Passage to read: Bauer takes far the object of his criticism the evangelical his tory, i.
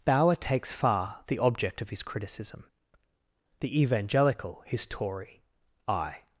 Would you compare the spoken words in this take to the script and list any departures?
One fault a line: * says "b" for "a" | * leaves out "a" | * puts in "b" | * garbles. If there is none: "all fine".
all fine